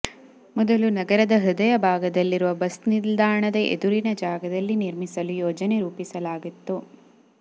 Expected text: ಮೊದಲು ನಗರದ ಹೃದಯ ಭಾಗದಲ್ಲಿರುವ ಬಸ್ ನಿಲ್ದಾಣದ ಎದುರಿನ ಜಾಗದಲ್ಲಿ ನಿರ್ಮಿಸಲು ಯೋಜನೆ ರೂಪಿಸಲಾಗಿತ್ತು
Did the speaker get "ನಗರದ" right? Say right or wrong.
right